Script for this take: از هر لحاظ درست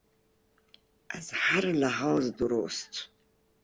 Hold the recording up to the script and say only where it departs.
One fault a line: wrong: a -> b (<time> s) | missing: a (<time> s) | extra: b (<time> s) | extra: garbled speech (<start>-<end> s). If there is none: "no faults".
no faults